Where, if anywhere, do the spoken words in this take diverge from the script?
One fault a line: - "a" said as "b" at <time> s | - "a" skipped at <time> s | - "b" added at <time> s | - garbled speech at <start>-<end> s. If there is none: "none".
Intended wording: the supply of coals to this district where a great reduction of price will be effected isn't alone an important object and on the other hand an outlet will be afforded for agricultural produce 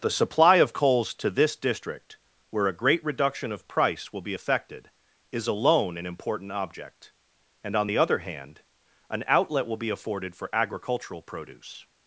- "isn't" said as "is" at 5.3 s